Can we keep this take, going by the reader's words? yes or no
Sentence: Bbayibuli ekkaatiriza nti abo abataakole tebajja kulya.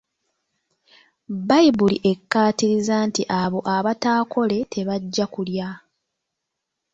yes